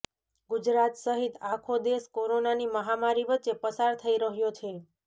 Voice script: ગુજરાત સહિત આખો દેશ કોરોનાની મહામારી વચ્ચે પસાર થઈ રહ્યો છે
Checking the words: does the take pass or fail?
pass